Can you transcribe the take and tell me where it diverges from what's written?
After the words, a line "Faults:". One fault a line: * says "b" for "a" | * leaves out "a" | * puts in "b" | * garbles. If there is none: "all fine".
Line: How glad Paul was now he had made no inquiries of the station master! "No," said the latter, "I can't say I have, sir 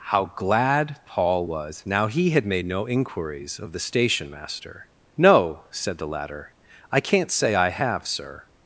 How glad Paul was now he had made no inquiries of the station master! "No," said the latter, "I can't say I have, sir
Faults:
all fine